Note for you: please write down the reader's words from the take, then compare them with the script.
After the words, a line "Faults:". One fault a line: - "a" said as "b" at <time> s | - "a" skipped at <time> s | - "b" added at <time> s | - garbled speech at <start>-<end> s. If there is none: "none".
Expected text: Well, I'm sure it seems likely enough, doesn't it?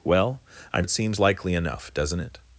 Well, I'm it seems likely enough, doesn't it?
Faults:
- "sure" skipped at 0.8 s